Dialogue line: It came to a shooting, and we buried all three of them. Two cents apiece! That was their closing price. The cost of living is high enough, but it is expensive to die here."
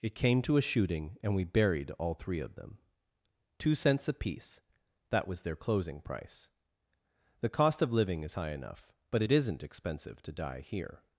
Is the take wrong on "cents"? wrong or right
right